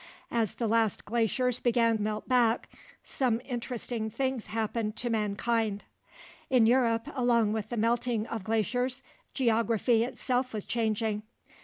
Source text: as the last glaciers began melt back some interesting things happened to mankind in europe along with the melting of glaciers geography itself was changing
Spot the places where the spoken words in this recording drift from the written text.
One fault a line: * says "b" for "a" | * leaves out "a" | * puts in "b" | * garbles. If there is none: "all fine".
all fine